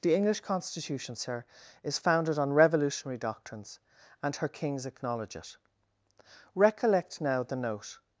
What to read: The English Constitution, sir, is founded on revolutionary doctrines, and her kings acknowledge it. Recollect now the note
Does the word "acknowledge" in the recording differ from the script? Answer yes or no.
no